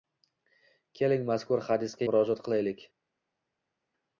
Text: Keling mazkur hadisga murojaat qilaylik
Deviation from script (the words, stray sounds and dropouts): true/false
false